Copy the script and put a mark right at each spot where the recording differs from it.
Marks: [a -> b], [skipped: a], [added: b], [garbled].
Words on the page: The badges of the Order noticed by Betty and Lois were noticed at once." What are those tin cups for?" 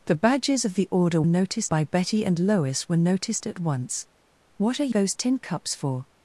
The badges of the Order noticed by Betty and Lois were noticed at once." What are those tin cups for?"